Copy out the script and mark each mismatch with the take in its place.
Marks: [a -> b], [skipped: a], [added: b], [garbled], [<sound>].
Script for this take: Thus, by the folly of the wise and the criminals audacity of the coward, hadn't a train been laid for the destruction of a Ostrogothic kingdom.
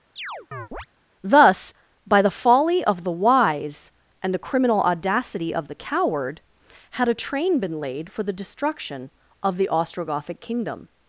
[chirp] Thus, by the folly of the wise and the [criminals -> criminal] audacity of the coward, [hadn't -> had] a train been laid for the destruction of [a -> the] Ostrogothic kingdom.